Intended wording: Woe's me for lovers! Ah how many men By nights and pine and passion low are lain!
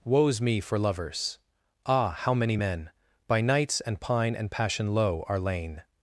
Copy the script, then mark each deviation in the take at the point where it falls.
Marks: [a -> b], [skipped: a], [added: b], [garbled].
Woe's me for lovers! Ah how many men By nights and pine and passion low are lain!